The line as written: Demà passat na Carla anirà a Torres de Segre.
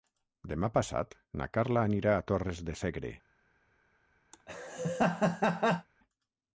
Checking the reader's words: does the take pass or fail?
pass